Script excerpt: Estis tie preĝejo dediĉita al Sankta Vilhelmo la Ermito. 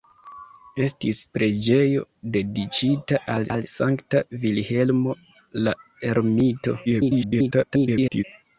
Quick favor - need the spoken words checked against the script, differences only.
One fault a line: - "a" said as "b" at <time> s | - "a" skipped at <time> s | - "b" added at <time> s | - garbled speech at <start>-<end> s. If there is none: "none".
- "tie" skipped at 1.2 s
- "al" added at 3.6 s
- garbled speech at 6.9-8.2 s